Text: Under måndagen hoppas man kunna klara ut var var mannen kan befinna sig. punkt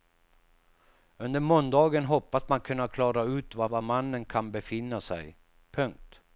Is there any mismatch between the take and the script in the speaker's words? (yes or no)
no